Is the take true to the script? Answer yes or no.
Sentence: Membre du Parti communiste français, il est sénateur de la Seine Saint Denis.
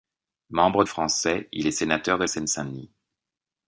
no